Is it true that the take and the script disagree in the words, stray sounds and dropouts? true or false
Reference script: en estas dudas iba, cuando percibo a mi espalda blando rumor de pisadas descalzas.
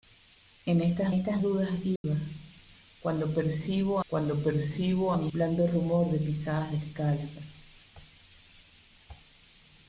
true